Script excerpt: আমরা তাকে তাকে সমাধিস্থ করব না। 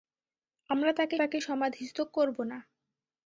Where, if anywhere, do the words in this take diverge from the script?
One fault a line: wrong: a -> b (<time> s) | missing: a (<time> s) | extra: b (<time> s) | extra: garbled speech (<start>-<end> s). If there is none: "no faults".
no faults